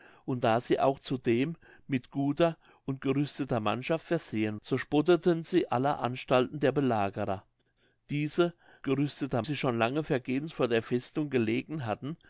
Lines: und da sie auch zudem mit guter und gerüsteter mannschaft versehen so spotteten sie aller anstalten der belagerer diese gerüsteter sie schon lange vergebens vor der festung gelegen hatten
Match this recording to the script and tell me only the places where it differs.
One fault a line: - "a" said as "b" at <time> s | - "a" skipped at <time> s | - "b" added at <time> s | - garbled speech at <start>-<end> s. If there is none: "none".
none